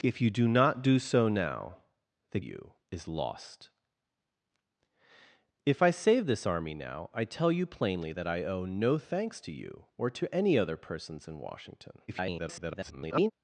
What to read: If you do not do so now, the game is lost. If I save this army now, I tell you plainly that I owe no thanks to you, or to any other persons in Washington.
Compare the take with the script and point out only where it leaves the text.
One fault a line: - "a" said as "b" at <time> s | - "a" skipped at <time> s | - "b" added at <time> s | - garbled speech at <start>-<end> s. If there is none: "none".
- "game" said as "you" at 2.4 s
- garbled speech at 12.1-13.3 s